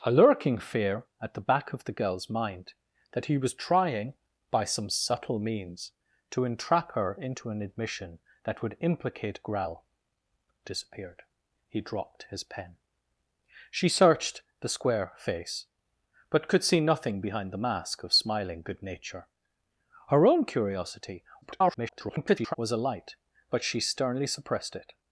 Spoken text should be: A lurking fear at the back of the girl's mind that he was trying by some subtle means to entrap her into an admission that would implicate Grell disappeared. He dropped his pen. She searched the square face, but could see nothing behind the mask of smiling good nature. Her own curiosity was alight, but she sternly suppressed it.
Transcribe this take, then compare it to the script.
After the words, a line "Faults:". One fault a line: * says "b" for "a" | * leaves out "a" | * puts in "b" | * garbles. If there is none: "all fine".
A lurking fear at the back of the girl's mind that he was trying by some subtle means to entrap her into an admission that would implicate Grell disappeared. He dropped his pen. She searched the square face, but could see nothing behind the mask of smiling good nature. Her own curiosity [garbled] was alight, but she sternly suppressed it.
Faults:
* garbles